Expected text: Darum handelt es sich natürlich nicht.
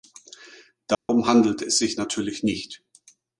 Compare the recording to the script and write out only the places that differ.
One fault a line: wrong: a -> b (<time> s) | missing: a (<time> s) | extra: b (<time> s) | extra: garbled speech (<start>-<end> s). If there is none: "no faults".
no faults